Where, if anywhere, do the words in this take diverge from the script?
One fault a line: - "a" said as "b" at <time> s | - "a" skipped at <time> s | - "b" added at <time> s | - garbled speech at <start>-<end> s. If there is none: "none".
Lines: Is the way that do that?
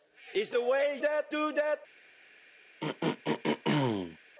none